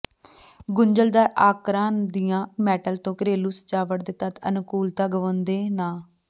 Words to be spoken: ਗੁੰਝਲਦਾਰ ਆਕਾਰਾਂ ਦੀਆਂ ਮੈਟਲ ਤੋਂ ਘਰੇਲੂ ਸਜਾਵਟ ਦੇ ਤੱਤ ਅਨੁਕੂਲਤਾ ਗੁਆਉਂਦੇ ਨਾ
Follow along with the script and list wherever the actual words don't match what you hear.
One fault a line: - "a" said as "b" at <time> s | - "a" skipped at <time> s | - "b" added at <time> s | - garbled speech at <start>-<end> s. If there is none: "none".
none